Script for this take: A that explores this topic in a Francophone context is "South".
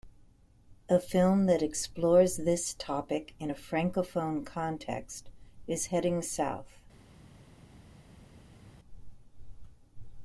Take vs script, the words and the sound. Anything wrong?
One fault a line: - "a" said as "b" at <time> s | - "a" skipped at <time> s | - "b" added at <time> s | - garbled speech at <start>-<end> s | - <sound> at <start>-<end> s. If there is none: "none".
- "film" added at 1.0 s
- "Heading" added at 5.9 s